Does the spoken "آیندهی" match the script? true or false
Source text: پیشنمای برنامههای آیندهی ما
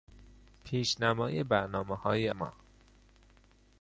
false